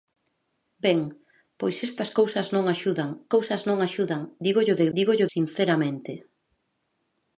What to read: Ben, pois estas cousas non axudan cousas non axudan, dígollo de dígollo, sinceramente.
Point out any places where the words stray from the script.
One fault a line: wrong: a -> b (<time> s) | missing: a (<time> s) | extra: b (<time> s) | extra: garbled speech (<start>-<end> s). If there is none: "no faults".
no faults